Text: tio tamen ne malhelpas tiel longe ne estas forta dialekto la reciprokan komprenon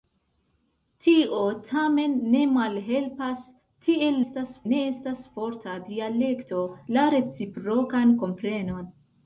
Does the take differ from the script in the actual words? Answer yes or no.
yes